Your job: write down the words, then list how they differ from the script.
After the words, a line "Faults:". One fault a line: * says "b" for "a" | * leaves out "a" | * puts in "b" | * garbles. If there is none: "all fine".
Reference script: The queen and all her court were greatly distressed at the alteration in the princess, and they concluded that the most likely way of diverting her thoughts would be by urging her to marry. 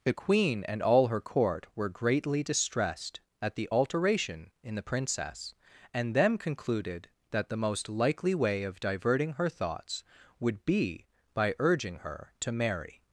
The queen and all her court were greatly distressed at the alteration in the princess, and them concluded that the most likely way of diverting her thoughts would be by urging her to marry.
Faults:
* says "them" for "they"